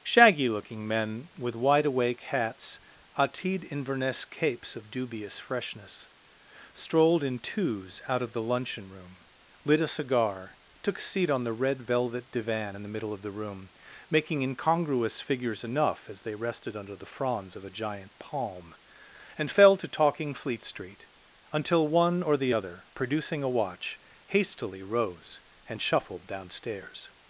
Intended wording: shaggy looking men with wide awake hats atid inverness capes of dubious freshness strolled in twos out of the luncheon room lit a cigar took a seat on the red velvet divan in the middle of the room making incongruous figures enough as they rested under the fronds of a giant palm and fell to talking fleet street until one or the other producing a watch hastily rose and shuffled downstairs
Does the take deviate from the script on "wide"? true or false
false